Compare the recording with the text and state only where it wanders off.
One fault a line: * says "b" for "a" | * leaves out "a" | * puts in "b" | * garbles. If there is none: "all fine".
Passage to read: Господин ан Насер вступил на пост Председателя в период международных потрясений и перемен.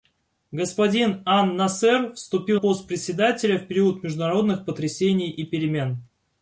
* leaves out "на"